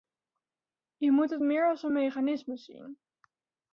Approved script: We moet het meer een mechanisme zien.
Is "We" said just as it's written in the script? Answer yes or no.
no